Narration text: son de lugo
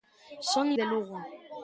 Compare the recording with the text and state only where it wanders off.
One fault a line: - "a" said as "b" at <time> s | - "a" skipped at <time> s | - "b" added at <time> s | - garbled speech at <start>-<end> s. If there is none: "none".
none